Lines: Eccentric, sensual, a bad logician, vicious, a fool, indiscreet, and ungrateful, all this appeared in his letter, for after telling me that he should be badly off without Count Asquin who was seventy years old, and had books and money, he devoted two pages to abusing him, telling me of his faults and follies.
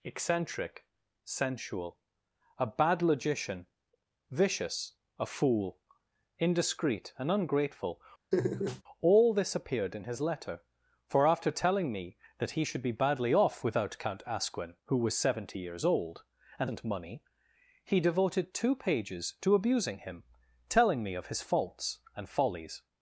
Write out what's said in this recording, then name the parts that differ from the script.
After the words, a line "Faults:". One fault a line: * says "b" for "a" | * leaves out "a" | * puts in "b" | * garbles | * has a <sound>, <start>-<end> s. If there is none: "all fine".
Eccentric, sensual, a bad logician, vicious, a fool, indiscreet, and ungrateful, all this appeared in his letter, for after telling me that he should be badly off without Count Asquin who was seventy years old, and and money, he devoted two pages to abusing him, telling me of his faults and follies.
Faults:
* has a laugh, 8.3-8.8 s
* leaves out "had books"